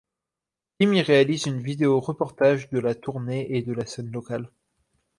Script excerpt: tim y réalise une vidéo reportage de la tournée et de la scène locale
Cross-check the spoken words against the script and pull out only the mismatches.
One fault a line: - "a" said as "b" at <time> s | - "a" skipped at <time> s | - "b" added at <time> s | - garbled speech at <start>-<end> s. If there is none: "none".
none